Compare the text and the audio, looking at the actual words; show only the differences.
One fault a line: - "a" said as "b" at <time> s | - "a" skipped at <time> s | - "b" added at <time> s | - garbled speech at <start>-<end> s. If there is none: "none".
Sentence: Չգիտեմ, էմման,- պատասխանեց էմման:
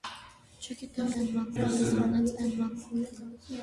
none